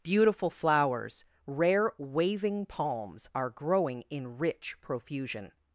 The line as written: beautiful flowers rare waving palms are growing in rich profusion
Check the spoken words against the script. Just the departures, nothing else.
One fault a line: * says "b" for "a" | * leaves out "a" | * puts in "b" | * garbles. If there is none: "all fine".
all fine